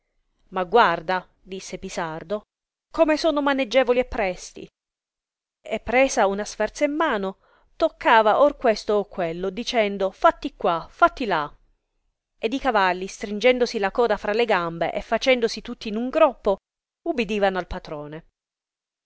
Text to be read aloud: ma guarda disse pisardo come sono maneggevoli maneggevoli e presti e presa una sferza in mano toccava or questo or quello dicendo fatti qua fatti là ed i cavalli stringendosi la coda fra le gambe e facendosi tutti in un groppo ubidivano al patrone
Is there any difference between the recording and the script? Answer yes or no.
yes